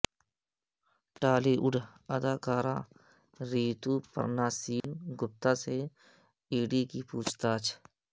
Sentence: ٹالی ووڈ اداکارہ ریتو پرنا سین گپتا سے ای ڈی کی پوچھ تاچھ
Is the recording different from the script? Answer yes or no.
no